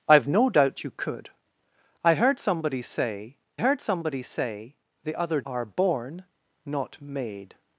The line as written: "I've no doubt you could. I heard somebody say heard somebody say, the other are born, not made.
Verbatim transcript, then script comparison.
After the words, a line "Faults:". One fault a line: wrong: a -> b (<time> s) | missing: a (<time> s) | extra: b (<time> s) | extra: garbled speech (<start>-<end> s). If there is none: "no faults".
"I've no doubt you could. I heard somebody say heard somebody say, the other are born, not made.
Faults:
no faults